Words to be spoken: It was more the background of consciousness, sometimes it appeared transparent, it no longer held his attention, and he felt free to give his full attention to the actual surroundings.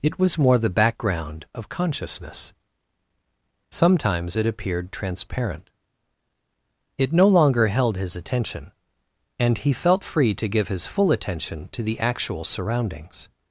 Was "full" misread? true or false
false